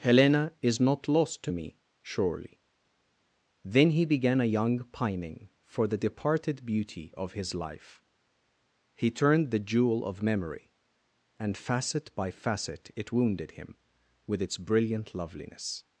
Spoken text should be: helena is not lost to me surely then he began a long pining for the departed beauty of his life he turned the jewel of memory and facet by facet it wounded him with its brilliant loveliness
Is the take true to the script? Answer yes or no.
no